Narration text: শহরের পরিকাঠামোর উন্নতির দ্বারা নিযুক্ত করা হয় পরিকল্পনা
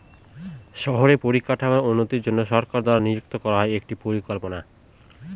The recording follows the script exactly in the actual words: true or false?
false